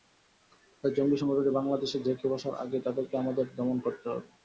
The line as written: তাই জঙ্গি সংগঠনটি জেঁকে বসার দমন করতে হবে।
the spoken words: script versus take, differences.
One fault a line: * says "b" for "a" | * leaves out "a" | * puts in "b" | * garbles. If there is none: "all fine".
* puts in "বাংলাদেশে"
* puts in "আগেই তাদেরকে আমাদের"